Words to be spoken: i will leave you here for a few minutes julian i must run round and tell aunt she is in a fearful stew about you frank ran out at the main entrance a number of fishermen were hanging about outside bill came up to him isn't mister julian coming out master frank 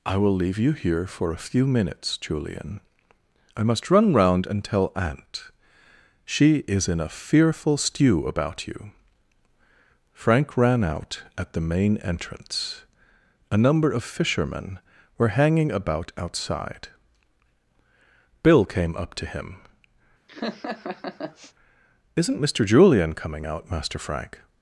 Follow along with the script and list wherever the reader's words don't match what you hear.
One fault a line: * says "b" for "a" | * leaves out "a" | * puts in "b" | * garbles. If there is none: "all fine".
all fine